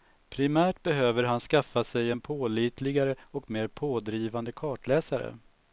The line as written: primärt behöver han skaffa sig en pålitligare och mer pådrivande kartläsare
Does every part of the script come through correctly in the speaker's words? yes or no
yes